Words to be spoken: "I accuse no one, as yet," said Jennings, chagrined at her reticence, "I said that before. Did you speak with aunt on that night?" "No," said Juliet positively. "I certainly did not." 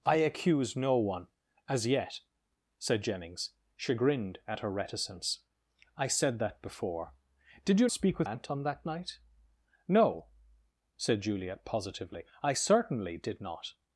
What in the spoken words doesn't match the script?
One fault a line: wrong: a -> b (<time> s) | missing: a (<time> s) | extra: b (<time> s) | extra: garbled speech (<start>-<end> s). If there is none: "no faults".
no faults